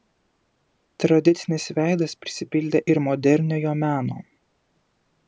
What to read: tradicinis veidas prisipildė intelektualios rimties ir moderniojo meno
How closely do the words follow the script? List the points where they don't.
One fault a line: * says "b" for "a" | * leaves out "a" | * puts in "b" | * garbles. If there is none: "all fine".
* leaves out "intelektualios rimties"